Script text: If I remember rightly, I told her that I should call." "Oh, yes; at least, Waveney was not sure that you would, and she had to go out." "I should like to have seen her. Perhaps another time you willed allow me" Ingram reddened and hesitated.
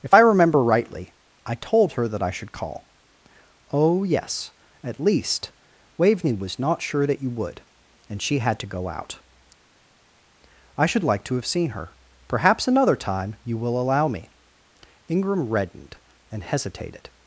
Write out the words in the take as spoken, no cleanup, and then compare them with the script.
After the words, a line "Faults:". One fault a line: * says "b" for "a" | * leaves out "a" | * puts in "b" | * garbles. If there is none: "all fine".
If I remember rightly, I told her that I should call." "Oh, yes; at least, Waveney was not sure that you would, and she had to go out." "I should like to have seen her. Perhaps another time you will allow me" Ingram reddened and hesitated.
Faults:
* says "will" for "willed"